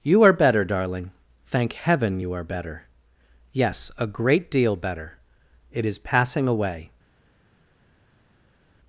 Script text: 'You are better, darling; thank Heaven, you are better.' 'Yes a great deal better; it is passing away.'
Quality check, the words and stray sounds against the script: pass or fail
pass